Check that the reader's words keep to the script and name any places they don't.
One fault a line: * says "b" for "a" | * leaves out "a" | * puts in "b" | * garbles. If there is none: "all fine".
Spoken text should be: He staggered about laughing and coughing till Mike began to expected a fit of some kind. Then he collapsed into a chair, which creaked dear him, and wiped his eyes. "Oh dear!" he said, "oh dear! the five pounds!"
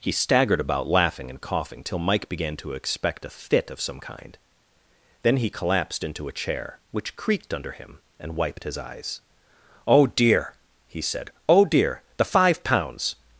* says "expect" for "expected"
* says "under" for "dear"